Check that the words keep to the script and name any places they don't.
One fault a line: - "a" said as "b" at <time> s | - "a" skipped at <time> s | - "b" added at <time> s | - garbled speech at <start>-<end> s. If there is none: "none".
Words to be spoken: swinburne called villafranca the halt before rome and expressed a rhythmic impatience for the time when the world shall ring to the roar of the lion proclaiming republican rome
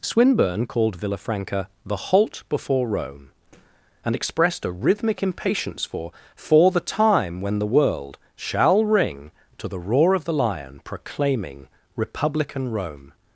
- "for" added at 6.3 s